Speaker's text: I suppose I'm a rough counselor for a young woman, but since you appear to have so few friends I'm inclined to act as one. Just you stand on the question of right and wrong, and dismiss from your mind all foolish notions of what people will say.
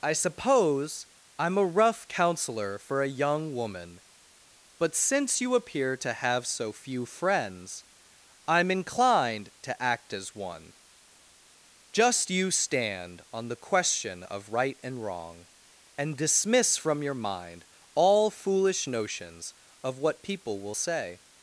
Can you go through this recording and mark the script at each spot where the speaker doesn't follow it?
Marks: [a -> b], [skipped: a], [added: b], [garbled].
I suppose I'm a rough counselor for a young woman, but since you appear to have so few friends I'm inclined to act as one. Just you stand on the question of right and wrong, and dismiss from your mind all foolish notions of what people will say.